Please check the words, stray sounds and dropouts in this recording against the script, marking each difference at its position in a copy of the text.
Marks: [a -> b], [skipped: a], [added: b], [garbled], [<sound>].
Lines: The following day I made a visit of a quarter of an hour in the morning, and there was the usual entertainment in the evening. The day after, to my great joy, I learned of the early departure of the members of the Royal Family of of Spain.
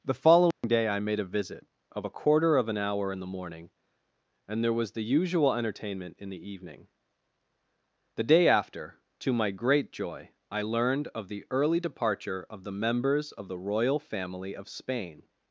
The following [dropout] day I made a visit of a quarter of an hour in the morning, and there was the usual entertainment in the evening. The day after, to my great joy, I learned of the early departure of the members of the Royal Family of [skipped: of] Spain.